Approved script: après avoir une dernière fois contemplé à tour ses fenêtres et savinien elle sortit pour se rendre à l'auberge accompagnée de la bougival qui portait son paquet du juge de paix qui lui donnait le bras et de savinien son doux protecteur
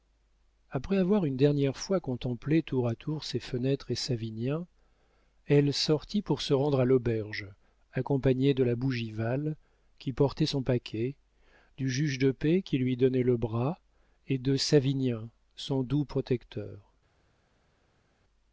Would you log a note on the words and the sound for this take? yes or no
yes